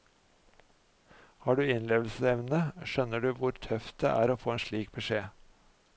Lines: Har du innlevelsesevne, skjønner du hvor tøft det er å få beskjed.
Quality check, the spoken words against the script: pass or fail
fail